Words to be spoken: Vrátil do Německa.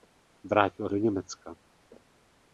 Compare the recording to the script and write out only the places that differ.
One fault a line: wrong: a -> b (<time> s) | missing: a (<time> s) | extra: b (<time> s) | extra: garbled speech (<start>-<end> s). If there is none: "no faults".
no faults